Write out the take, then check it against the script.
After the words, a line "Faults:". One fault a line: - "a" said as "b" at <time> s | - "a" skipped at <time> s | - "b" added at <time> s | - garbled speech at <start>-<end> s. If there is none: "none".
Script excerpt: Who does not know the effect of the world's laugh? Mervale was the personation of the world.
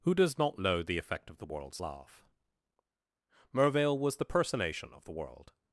Who does not know the effect of the world's laugh? Mervale was the personation of the world.
Faults:
none